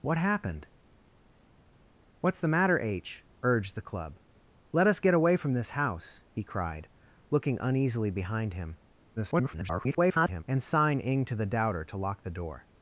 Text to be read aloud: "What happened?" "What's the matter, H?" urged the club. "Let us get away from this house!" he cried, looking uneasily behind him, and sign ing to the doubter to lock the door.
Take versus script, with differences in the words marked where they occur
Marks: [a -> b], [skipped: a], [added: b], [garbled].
"What happened?" "What's the matter, H?" urged the club. "Let us get away from this house!" he cried, looking uneasily behind him, [garbled] and sign ing to the doubter to lock the door.